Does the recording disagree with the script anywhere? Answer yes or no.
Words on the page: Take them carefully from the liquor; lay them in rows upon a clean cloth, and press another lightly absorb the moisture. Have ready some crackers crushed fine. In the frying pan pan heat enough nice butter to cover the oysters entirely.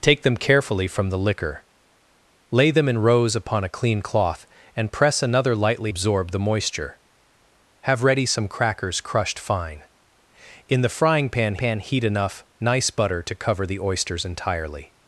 no